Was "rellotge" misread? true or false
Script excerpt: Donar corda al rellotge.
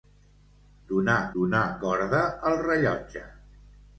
false